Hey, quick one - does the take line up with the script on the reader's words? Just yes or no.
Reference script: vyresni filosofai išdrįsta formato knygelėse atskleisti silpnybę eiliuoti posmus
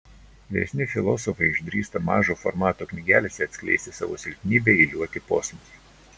no